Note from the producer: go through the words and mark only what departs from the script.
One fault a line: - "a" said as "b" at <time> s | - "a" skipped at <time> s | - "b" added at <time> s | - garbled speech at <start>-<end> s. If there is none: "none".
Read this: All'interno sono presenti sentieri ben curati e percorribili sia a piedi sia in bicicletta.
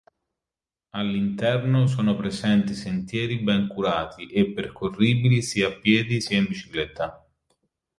none